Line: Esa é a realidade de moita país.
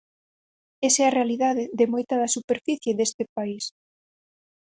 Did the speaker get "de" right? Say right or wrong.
right